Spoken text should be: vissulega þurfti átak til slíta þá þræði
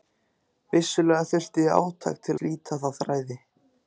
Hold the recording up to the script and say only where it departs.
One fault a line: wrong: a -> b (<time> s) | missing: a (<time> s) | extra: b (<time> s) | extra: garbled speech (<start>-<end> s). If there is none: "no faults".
no faults